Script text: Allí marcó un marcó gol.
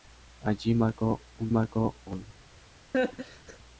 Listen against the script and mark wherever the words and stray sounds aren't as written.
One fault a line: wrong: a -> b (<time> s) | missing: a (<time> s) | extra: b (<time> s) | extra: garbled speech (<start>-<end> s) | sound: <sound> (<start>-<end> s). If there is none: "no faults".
sound: laugh (2.9-3.6 s)